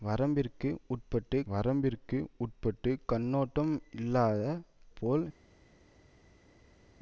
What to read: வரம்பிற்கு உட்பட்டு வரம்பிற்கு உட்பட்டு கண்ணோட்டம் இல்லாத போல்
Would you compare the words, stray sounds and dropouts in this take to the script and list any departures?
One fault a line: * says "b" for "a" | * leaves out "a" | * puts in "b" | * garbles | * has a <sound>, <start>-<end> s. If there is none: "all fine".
all fine